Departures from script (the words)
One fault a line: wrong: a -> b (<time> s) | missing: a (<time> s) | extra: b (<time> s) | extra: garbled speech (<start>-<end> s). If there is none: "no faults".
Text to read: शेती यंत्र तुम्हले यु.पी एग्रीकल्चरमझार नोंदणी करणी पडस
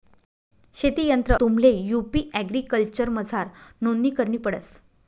no faults